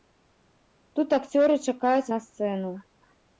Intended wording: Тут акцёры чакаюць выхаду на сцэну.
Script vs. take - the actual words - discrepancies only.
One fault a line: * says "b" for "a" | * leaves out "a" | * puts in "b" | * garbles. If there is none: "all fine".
* leaves out "выхаду"